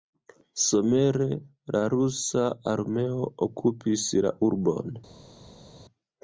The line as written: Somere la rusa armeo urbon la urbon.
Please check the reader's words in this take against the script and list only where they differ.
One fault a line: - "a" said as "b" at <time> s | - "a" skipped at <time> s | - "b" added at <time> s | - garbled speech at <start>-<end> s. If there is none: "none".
- "urbon" said as "okupis" at 3.5 s